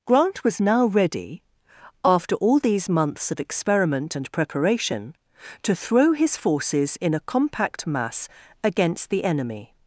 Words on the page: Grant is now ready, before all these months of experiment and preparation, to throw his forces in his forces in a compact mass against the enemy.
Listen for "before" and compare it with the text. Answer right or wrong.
wrong